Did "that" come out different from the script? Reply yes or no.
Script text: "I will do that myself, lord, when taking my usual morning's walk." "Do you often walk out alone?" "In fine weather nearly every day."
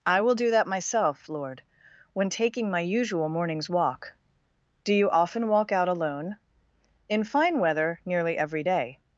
no